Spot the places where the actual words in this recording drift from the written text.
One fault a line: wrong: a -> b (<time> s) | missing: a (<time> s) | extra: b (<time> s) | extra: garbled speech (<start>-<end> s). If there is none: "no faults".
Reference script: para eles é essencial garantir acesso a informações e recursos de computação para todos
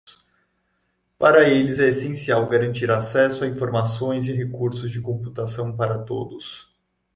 no faults